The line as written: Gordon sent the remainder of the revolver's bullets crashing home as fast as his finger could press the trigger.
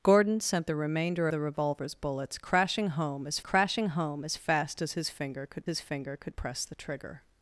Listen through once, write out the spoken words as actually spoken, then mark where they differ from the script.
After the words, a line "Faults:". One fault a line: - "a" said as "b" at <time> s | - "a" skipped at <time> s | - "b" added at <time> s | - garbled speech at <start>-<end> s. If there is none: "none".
Gordon sent the remainder the revolver's bullets crashing home as crashing home as fast as his finger could his finger could press the trigger.
Faults:
- "of" skipped at 1.3 s
- "crashing home as" added at 3.4 s
- "his finger could" added at 5.6 s